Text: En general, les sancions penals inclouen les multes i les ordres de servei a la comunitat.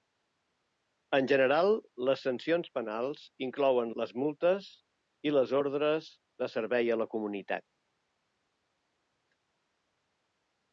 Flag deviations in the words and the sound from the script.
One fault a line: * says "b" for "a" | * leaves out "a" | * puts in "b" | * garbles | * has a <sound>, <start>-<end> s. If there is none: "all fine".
all fine